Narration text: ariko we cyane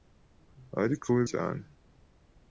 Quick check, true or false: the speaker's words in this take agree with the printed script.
true